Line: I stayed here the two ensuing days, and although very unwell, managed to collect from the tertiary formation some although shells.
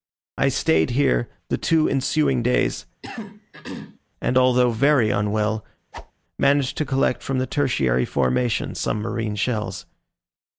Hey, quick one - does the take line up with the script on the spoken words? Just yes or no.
no